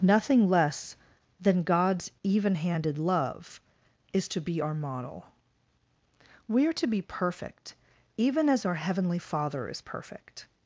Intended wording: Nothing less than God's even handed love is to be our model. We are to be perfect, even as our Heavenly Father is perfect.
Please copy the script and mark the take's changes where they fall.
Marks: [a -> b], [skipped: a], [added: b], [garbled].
Nothing less than God's even handed love is to be our model. We are to be perfect, even as our Heavenly Father is perfect.